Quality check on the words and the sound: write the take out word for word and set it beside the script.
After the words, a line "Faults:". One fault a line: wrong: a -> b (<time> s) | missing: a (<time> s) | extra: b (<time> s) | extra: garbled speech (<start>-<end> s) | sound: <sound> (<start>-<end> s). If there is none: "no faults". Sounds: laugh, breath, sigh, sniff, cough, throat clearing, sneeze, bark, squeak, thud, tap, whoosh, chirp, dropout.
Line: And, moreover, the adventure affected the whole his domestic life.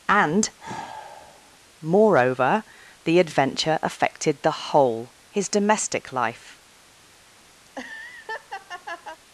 And, moreover, the adventure affected the whole his domestic life.
Faults:
sound: sigh (0.6-1.6 s)
sound: laugh (7.6-9.2 s)